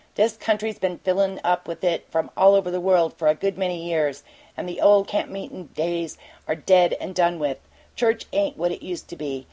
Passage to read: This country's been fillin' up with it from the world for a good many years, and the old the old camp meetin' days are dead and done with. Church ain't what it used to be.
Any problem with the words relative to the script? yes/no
yes